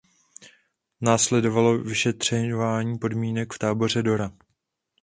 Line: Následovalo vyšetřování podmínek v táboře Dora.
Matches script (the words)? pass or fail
pass